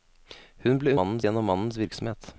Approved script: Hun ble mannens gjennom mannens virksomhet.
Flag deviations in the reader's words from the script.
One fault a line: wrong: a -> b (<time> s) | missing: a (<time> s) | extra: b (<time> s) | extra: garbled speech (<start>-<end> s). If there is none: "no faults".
no faults